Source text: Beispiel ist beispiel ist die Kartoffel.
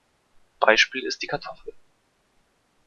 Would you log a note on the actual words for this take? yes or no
yes